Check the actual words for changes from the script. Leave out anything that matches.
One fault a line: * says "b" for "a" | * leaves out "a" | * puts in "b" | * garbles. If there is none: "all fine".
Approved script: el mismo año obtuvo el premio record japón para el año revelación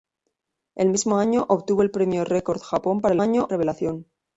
all fine